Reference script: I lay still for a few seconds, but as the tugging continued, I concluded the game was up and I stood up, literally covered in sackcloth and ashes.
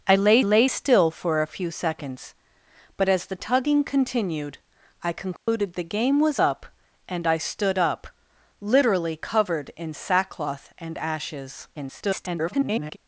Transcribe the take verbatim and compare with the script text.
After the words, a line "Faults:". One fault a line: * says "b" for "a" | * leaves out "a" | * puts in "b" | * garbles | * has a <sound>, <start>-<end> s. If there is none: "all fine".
I lay lay still for a few seconds, but as the tugging continued, I concluded the game was up and I stood up, literally covered in sackcloth and ashes. [garbled]
Faults:
* puts in "lay"
* has a dropout, 5.4-5.5 s
* garbles